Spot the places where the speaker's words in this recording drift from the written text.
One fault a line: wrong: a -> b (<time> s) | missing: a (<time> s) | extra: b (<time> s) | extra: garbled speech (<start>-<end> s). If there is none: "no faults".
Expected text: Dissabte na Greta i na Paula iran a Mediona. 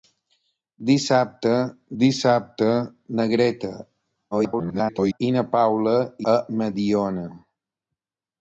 extra: dissabte (2.0 s)
extra: garbled speech (4.3-5.2 s)
missing: iran (5.9 s)